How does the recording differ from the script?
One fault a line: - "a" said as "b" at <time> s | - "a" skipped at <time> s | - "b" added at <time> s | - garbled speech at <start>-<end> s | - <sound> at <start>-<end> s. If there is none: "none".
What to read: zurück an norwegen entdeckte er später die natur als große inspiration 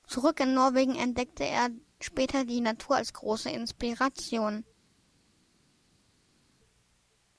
- "an" said as "in" at 0.4 s